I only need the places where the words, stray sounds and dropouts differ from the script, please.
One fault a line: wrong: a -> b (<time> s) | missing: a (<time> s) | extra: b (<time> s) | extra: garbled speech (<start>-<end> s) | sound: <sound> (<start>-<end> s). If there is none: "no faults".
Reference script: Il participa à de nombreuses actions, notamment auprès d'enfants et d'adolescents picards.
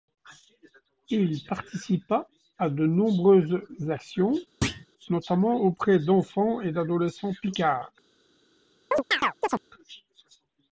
sound: thud (4.6-4.9 s)
sound: chirp (8.9-9.6 s)